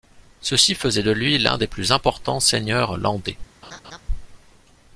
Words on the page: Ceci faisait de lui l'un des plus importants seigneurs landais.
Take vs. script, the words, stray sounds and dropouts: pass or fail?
fail